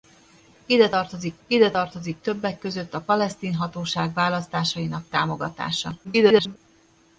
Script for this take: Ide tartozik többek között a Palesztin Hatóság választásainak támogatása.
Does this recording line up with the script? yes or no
no